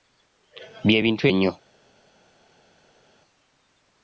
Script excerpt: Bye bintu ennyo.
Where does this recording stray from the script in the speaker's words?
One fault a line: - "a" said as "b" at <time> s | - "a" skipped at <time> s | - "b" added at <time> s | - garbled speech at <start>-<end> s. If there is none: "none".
none